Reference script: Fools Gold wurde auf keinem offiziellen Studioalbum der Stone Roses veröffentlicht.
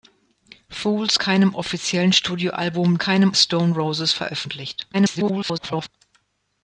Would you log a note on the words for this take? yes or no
yes